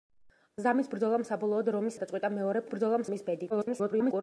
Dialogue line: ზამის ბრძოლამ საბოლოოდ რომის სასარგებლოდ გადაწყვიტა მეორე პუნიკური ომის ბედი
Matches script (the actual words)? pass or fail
fail